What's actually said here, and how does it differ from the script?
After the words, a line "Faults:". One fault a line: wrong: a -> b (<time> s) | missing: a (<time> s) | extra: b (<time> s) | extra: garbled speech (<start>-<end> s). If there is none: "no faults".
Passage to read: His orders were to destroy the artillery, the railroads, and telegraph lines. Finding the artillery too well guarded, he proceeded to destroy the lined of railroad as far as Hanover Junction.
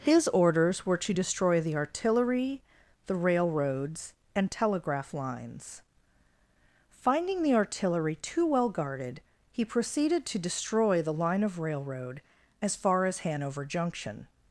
His orders were to destroy the artillery, the railroads, and telegraph lines. Finding the artillery too well guarded, he proceeded to destroy the line of railroad as far as Hanover Junction.
Faults:
wrong: lined -> line (11.1 s)